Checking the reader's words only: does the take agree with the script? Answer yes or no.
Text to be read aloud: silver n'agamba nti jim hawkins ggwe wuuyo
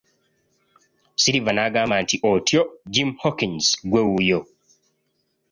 no